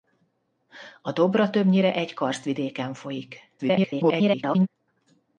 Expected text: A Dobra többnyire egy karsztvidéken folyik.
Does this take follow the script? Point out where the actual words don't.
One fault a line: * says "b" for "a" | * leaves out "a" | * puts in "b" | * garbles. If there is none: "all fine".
* garbles